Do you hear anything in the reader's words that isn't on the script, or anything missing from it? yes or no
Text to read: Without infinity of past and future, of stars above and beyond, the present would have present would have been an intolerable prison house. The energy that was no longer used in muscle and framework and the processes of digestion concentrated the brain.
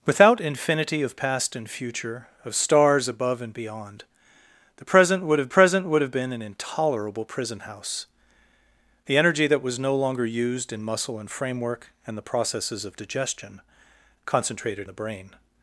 no